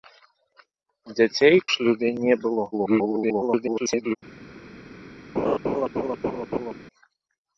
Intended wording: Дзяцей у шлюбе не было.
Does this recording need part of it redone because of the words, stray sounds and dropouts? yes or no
yes